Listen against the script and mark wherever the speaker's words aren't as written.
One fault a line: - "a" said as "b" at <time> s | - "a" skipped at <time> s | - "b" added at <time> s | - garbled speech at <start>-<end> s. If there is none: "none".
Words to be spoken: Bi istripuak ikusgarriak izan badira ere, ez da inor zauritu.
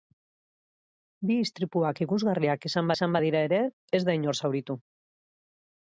- "izan" added at 3.0 s